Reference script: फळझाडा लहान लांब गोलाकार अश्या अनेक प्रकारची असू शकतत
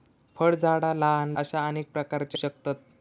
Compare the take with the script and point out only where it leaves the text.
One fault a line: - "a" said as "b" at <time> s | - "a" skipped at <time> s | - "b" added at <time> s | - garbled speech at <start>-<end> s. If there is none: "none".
- "लांब गोलाकार" skipped at 1.4 s
- "असू" skipped at 2.4 s